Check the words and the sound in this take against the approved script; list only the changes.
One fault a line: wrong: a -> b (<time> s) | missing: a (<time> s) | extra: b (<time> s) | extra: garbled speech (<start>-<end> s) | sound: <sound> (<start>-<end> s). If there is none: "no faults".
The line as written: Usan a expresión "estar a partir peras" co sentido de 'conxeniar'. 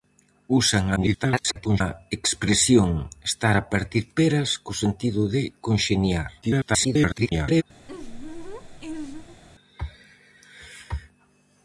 extra: garbled speech (1.0-1.8 s)
extra: garbled speech (6.4-7.6 s)
sound: laugh (7.9-9.4 s)